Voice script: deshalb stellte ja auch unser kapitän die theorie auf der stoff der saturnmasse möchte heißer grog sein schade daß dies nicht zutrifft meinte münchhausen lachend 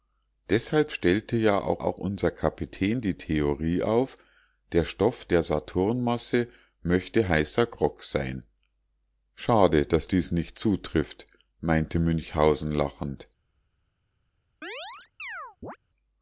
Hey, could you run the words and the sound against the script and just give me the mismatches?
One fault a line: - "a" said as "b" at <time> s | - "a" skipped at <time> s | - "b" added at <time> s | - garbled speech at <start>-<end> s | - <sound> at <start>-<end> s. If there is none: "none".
- "auch" added at 1.8 s
- chirp at 14.6-15.8 s